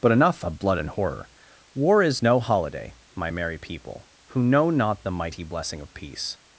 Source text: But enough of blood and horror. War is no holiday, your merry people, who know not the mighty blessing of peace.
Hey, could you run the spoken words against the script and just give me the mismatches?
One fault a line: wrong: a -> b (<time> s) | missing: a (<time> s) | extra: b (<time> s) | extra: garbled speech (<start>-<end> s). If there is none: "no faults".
wrong: your -> my (3.1 s)